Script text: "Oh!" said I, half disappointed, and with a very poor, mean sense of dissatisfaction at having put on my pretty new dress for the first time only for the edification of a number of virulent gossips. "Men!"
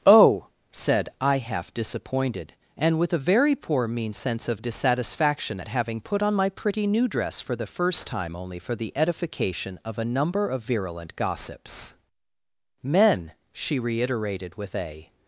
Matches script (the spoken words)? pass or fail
fail